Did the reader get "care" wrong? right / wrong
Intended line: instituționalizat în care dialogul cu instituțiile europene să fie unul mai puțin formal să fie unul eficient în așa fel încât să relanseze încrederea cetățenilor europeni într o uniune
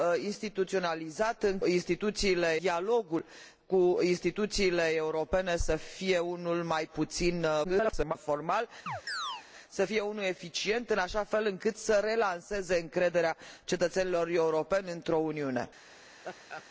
wrong